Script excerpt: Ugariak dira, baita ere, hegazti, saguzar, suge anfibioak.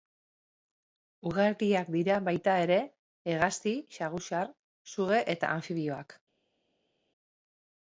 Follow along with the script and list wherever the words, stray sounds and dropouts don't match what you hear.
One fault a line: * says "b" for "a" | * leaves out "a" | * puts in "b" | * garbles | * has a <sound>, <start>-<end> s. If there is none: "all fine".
* puts in "eta"